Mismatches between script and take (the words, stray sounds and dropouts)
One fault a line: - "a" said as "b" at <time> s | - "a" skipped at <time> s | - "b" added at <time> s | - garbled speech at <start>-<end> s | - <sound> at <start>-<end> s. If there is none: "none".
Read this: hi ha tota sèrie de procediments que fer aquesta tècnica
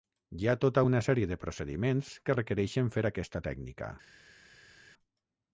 - "una" added at 0.9 s
- "requereixen" added at 2.4 s